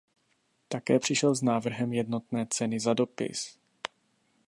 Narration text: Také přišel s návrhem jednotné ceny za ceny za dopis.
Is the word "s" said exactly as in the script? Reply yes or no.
yes